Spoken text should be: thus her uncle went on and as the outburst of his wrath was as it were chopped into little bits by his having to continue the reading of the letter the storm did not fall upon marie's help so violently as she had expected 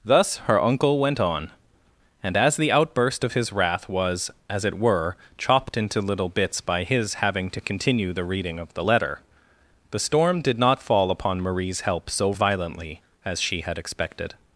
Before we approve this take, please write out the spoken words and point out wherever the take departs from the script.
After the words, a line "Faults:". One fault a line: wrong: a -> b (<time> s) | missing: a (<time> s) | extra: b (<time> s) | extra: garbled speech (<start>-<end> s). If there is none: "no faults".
thus her uncle went on and as the outburst of his wrath was as it were chopped into little bits by his having to continue the reading of the letter the storm did not fall upon marie's help so violently as she had expected
Faults:
no faults